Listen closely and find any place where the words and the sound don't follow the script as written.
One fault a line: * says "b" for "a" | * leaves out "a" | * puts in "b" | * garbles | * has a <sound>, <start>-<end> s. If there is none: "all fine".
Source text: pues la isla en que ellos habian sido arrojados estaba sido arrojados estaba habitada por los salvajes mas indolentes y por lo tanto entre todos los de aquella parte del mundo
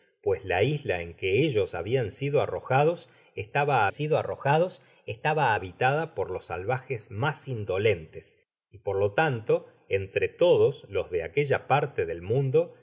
all fine